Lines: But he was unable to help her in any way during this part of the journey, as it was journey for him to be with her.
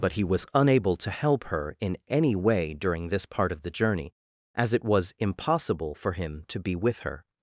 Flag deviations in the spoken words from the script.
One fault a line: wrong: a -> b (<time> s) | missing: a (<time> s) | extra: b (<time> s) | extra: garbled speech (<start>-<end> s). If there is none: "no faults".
wrong: journey -> impossible (5.2 s)